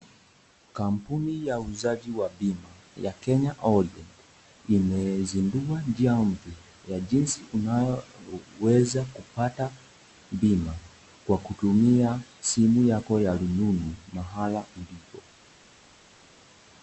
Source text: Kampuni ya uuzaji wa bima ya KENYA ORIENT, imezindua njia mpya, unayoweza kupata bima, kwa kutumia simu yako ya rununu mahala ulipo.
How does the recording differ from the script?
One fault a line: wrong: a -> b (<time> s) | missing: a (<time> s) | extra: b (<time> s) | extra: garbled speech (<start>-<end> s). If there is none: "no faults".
extra: ya jinsi (6.9 s)